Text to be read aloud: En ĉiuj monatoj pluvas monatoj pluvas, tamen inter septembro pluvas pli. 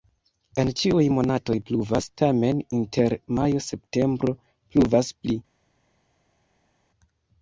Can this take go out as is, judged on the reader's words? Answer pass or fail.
fail